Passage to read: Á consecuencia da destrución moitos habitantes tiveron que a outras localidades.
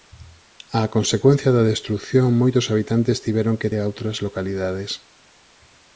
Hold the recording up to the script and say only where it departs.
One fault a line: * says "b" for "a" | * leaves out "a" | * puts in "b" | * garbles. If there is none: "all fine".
all fine